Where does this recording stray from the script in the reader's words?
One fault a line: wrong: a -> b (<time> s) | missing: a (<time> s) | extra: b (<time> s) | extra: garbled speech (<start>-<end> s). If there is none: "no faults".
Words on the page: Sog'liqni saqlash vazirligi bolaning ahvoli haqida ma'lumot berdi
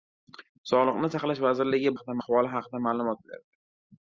wrong: bolaning -> haqida (1.9 s)